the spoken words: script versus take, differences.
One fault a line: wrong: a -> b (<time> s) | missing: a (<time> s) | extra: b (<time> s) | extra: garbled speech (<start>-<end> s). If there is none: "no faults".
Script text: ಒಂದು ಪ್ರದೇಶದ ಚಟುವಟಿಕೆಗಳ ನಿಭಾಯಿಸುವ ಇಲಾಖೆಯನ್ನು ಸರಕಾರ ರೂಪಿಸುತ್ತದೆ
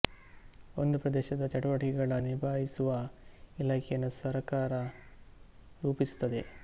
no faults